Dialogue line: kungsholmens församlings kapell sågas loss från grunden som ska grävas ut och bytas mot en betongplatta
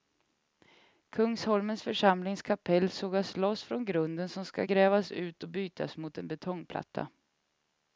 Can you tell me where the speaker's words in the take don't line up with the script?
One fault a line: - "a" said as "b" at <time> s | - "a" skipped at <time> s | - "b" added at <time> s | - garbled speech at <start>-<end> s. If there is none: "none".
none